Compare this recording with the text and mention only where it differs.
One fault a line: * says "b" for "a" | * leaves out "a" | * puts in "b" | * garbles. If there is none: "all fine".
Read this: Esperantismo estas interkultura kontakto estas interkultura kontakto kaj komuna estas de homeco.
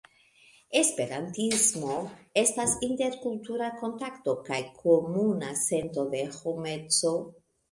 * leaves out "estas interkultura kontakto"
* says "sento" for "estas"